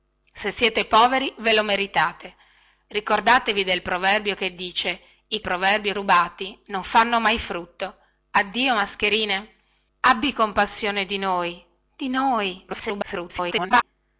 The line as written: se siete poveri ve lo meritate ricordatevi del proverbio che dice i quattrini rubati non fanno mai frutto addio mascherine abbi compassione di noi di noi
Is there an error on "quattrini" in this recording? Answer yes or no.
yes